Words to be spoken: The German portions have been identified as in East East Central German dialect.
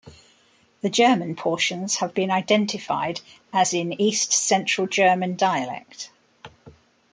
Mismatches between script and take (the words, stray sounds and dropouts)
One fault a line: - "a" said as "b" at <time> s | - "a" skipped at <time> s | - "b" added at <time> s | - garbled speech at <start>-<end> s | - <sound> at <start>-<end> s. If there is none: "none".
- "East" skipped at 4.3 s